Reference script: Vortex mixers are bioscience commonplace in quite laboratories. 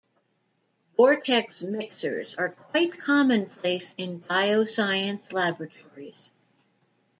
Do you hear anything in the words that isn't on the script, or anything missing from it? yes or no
yes